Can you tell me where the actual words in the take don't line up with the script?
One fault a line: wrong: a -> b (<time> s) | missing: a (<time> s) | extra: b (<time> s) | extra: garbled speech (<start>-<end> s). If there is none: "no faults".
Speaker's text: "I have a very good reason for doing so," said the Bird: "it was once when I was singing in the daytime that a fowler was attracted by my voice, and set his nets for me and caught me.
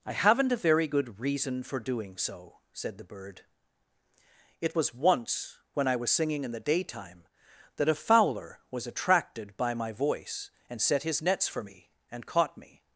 wrong: have -> haven't (0.1 s)